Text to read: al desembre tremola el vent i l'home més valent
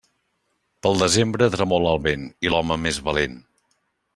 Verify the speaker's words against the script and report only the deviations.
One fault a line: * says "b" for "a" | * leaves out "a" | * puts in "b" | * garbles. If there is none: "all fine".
* says "pel" for "al"